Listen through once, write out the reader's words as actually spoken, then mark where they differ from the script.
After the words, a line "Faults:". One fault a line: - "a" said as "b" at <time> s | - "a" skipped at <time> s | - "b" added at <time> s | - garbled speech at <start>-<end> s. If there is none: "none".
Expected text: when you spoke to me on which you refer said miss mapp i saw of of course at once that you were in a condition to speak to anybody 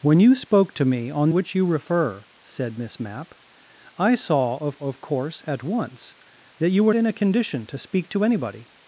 when you spoke to me on which you refer said miss mapp i saw of of course at once that you were in a condition to speak to anybody
Faults:
none